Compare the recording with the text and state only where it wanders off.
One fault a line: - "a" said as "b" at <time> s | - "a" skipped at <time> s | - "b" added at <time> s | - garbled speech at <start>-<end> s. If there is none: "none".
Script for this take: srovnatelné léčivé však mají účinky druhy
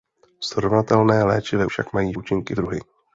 none